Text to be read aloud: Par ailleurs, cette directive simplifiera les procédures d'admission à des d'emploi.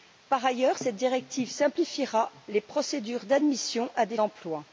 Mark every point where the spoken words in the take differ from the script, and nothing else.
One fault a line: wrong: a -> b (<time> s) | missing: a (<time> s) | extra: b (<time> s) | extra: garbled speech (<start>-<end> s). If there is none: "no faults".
no faults